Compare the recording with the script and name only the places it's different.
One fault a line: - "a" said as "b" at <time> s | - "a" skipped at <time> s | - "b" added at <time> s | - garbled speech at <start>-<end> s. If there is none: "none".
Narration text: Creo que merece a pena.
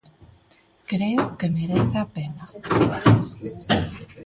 none